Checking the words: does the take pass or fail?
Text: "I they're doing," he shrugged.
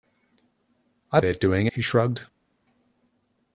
pass